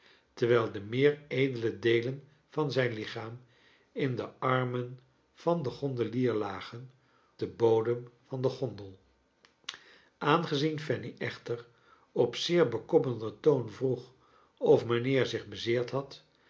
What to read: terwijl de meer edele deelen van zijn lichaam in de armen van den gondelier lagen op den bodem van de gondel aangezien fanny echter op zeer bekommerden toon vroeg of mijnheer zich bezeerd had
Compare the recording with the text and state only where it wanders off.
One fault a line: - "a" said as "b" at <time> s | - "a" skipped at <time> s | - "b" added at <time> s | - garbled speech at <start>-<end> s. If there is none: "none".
- "op" skipped at 6.9 s